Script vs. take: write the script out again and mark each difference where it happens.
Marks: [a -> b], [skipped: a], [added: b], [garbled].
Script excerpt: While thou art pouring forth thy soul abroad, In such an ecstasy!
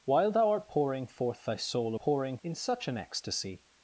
While thou art pouring forth thy soul [abroad, -> pouring] In such an ecstasy!